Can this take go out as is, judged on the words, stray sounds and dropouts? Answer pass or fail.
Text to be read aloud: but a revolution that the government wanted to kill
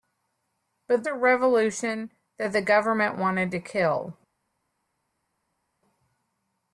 pass